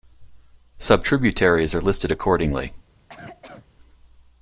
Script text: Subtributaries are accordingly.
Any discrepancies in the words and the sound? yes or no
yes